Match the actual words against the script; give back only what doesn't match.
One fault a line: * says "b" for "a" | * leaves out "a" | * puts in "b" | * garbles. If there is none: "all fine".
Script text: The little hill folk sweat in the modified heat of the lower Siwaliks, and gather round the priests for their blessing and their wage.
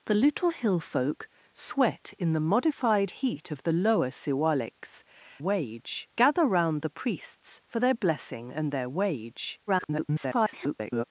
* says "wage" for "and"
* garbles